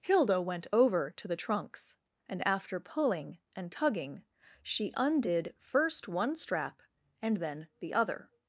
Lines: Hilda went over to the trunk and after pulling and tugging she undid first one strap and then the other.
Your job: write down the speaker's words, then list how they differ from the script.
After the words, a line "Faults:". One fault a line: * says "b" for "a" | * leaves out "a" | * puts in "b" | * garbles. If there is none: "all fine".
Hilda went over to the trunks and after pulling and tugging she undid first one strap and then the other.
Faults:
* says "trunks" for "trunk"